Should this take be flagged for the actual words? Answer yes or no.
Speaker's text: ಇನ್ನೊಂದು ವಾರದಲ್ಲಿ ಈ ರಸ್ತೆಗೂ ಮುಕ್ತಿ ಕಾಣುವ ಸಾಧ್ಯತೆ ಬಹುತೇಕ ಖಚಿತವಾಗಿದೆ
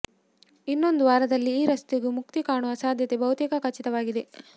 no